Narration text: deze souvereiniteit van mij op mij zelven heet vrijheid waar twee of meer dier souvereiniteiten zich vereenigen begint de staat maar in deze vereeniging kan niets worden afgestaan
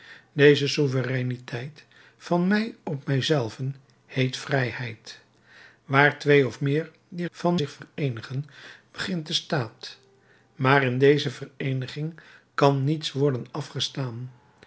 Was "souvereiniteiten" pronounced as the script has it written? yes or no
no